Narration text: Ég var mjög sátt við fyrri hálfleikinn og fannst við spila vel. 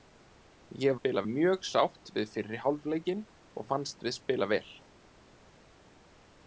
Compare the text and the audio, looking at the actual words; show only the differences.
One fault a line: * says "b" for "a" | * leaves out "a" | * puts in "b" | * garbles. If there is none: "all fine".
* says "spila" for "var"